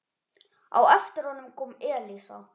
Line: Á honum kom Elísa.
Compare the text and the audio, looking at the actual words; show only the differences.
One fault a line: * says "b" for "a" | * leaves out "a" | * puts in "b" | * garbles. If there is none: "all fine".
* puts in "eftir"